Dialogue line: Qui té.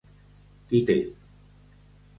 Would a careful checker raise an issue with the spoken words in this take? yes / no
no